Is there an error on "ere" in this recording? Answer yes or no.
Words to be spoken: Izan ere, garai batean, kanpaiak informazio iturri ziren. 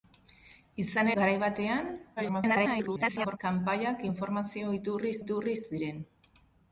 yes